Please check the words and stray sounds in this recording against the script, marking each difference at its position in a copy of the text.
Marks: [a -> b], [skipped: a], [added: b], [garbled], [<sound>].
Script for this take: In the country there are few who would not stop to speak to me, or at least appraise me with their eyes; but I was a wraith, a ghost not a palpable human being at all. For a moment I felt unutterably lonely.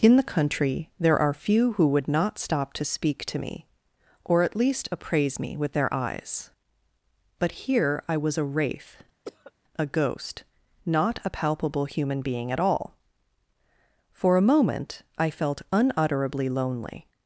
In the country there are few who would not stop to speak to me, or at least appraise me with their eyes; but [added: here] I was a wraith, [cough] a ghost not a palpable human being at all. For a moment I felt unutterably lonely.